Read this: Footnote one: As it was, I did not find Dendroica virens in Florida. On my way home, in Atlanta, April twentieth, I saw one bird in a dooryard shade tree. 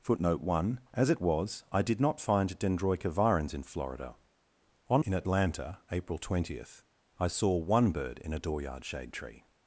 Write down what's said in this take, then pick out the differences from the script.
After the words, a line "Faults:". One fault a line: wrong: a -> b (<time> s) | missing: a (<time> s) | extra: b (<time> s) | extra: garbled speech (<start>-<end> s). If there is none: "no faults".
Footnote one: As it was, I did not find Dendroica virens in Florida. On in Atlanta, April twentieth, I saw one bird in a dooryard shade tree.
Faults:
missing: my way home (5.0 s)